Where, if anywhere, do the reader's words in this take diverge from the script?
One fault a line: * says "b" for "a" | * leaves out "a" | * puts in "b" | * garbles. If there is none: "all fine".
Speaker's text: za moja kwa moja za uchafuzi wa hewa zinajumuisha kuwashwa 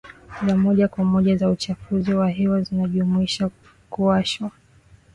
all fine